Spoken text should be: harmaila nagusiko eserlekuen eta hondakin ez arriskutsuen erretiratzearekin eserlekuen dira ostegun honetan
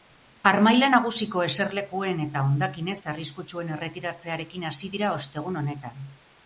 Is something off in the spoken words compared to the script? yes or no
yes